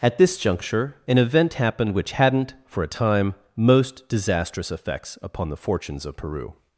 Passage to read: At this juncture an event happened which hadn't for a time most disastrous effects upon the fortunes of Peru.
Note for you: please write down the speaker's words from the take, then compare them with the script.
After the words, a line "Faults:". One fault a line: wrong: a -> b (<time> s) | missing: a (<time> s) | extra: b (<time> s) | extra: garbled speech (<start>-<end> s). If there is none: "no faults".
At this juncture an event happened which hadn't for a time most disastrous effects upon the fortunes of Peru.
Faults:
no faults